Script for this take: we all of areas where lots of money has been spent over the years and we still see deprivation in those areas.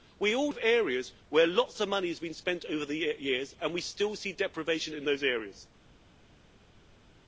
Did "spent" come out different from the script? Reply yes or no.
no